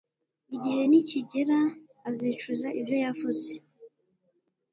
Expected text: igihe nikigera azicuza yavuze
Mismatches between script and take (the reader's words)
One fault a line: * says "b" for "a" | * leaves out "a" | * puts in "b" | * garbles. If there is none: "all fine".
* puts in "ibyo"